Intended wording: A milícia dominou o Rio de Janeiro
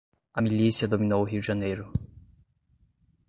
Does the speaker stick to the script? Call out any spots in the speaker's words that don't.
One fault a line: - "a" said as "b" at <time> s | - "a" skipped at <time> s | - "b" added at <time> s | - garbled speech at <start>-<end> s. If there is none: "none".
none